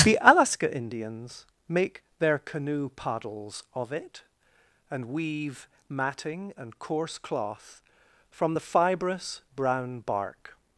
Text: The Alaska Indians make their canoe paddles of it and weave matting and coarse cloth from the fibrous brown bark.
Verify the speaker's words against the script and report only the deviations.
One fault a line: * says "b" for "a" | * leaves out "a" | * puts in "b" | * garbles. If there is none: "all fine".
all fine